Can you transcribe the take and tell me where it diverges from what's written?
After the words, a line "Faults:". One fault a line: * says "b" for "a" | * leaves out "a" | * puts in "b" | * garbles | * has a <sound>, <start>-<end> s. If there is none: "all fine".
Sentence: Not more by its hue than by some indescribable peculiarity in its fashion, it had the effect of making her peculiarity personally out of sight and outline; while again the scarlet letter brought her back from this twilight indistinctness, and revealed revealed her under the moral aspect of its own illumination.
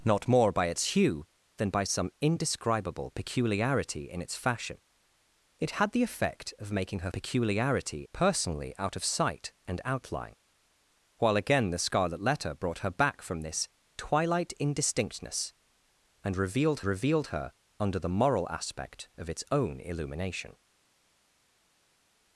Not more by its hue than by some indescribable peculiarity in its fashion, it had the effect of making her peculiarity personally out of sight and outline; while again the scarlet letter brought her back from this twilight indistinctness, and revealed revealed her under the moral aspect of its own illumination.
Faults:
all fine